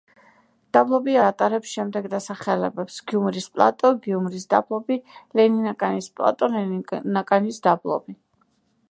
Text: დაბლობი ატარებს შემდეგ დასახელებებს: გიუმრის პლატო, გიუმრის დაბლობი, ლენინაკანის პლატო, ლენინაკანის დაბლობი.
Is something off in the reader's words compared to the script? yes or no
no